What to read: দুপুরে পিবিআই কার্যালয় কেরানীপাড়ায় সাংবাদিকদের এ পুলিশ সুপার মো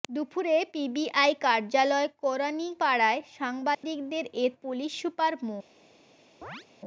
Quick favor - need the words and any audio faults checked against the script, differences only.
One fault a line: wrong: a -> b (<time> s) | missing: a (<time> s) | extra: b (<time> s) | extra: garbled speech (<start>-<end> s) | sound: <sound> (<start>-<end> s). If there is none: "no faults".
sound: dropout (3.7-3.8 s)
sound: chirp (6.4-6.7 s)